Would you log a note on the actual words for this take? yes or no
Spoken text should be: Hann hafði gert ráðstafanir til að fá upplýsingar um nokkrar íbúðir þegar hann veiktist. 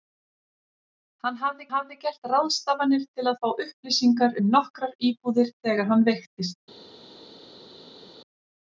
yes